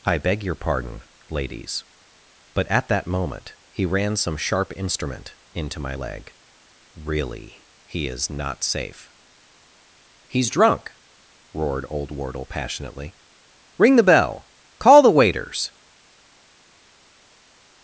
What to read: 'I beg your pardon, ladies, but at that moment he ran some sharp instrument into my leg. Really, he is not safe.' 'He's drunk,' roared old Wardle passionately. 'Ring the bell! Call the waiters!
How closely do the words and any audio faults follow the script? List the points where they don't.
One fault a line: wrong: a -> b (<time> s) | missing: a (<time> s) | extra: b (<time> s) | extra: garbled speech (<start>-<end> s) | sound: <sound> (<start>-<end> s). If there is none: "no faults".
no faults